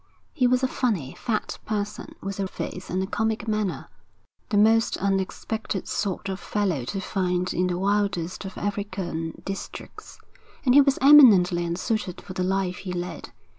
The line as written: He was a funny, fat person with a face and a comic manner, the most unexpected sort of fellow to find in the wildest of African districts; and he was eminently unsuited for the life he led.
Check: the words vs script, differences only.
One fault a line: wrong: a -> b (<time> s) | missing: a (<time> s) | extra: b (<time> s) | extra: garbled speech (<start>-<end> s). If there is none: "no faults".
no faults